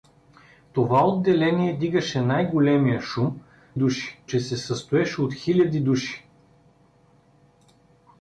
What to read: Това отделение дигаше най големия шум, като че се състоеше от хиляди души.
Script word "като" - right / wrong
wrong